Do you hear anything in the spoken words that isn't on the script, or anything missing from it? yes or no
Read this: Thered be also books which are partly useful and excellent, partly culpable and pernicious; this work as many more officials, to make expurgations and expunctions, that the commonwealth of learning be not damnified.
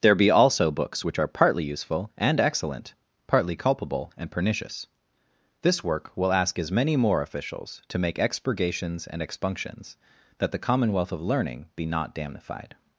yes